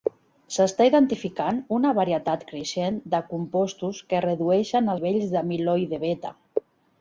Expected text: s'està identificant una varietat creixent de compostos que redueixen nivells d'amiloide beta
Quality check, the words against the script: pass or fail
pass